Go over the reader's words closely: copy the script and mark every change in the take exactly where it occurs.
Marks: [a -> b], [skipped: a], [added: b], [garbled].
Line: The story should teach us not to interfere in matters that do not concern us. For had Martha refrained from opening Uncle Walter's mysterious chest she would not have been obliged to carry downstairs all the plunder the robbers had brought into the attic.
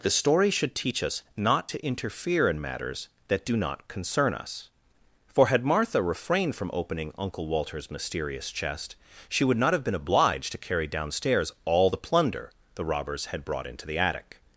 The story should teach us not to interfere in matters that do not concern us. For had Martha refrained from opening Uncle Walter's mysterious chest she would not have been obliged to carry downstairs all the plunder the robbers had brought into the attic.